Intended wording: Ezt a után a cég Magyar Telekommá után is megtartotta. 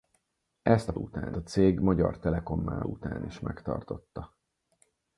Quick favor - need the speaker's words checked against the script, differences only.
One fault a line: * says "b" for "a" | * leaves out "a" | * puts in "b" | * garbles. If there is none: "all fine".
all fine